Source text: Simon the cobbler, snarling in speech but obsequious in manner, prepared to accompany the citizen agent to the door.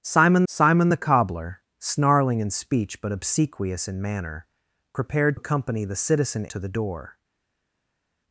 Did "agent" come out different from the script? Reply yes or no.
yes